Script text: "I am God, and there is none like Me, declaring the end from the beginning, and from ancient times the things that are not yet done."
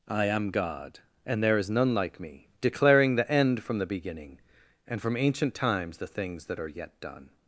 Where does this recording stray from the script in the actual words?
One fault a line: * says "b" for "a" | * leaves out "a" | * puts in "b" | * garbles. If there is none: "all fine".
* leaves out "not"